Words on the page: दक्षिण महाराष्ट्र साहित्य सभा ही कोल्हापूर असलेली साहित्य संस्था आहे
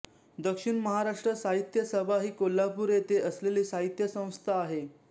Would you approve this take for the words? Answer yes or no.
no